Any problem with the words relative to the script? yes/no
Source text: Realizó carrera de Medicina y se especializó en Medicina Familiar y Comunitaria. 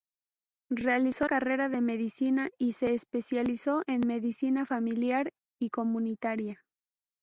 no